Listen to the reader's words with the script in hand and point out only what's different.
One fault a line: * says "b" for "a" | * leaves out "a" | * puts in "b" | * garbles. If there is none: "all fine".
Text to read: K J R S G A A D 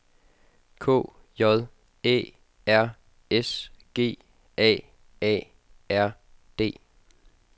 * puts in "Æ"
* puts in "R"